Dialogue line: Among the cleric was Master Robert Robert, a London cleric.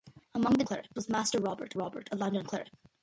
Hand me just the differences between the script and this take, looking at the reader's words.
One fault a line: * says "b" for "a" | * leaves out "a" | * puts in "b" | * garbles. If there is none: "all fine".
all fine